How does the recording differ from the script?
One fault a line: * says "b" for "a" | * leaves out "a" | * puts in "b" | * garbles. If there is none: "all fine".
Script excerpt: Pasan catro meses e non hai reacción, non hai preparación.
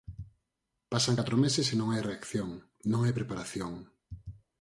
all fine